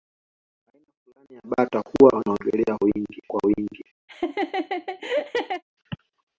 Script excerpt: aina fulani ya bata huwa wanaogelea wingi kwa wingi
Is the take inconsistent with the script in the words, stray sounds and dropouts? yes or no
yes